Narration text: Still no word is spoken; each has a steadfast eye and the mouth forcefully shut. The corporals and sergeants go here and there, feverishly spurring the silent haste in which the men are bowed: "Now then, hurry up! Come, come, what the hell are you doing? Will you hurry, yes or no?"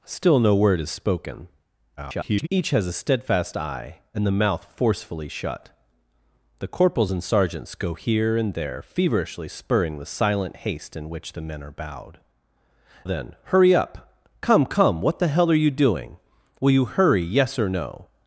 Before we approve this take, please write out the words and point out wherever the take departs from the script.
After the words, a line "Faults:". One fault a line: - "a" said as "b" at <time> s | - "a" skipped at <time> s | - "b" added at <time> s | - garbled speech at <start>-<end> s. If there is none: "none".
Still no word is spoken; [garbled] each has a steadfast eye and the mouth forcefully shut. The corporals and sergeants go here and there, feverishly spurring the silent haste in which the men are bowed: "Then, hurry up! Come, come, what the hell are you doing? Will you hurry, yes or no?"
Faults:
- garbled speech at 2.0-2.5 s
- "Now" skipped at 12.2 s